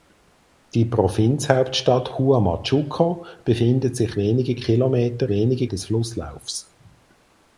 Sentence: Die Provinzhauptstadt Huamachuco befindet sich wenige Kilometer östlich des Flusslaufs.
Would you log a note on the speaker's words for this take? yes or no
yes